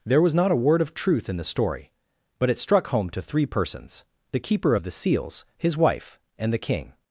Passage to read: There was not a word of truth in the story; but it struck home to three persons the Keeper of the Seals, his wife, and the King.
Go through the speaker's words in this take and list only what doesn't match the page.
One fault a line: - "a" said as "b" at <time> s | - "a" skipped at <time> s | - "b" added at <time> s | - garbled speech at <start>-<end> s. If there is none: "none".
none